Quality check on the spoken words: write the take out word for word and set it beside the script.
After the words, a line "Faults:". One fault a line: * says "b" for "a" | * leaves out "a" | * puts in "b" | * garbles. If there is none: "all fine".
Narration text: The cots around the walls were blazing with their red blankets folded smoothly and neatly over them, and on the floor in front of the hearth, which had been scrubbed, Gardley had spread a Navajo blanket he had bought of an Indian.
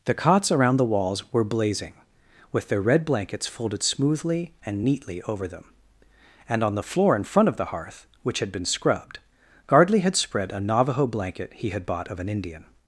The cots around the walls were blazing with their red blankets folded smoothly and neatly over them, and on the floor in front of the hearth, which had been scrubbed, Gardley had spread a Navajo blanket he had bought of an Indian.
Faults:
all fine